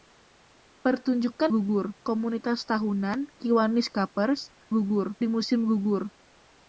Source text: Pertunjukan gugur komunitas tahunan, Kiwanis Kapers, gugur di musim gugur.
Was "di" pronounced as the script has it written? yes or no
yes